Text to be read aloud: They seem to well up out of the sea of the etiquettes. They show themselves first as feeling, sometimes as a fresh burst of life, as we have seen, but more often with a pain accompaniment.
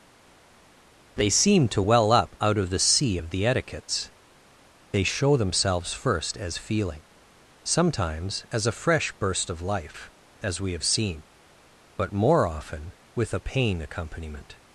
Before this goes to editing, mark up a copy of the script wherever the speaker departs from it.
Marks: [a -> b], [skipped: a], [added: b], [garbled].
They seem to well up out of the sea of the etiquettes. They show themselves first as feeling, sometimes as a fresh burst of life, as we have seen, but more often with a pain accompaniment.